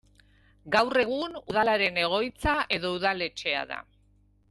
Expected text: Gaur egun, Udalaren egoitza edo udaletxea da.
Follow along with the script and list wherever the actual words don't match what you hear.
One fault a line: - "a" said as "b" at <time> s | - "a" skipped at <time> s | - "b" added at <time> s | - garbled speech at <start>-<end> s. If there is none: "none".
none